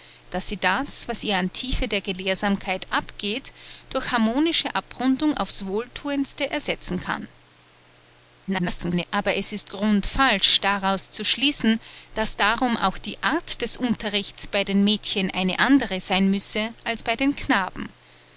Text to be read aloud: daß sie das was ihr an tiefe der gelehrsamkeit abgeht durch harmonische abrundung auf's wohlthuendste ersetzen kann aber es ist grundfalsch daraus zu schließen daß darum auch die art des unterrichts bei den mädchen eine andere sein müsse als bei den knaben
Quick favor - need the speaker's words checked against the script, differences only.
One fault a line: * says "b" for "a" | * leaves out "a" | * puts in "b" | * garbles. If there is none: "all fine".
* garbles